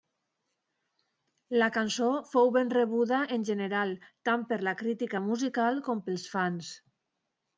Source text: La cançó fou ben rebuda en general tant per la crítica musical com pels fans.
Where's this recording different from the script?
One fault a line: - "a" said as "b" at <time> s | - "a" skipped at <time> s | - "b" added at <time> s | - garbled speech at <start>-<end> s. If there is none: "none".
none